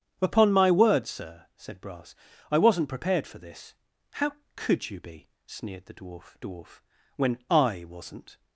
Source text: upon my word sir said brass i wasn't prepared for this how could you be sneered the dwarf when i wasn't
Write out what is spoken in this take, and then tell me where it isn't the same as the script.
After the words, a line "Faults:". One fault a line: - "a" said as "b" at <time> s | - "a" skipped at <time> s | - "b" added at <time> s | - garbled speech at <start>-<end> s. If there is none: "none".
upon my word sir said brass i wasn't prepared for this how could you be sneered the dwarf dwarf when i wasn't
Faults:
- "dwarf" added at 6.4 s